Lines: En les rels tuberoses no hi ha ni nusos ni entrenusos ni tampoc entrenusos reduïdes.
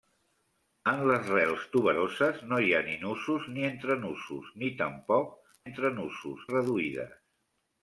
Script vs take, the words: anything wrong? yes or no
no